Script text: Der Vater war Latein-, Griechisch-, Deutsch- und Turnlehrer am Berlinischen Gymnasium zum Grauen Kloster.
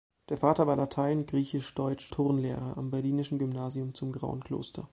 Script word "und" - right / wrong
wrong